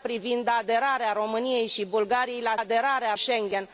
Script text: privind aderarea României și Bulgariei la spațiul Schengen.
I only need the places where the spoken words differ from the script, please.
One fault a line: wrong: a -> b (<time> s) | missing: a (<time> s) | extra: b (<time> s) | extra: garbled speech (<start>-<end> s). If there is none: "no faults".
wrong: spațiul -> aderarea (2.6 s)